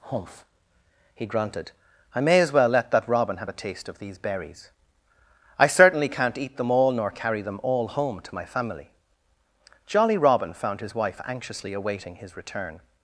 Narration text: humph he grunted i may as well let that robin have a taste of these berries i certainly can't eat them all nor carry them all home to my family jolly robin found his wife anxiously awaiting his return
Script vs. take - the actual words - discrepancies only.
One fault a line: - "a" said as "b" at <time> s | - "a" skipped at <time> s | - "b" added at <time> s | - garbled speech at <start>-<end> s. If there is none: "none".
none